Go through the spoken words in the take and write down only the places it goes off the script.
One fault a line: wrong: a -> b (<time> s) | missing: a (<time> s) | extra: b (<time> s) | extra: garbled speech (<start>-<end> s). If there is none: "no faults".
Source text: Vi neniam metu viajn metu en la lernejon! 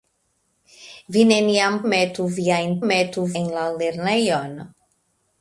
no faults